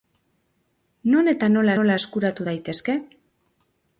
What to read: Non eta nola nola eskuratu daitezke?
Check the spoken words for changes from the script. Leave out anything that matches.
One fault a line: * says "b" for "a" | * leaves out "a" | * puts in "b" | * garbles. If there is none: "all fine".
all fine